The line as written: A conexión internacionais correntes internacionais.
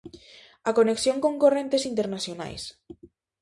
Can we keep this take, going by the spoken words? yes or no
no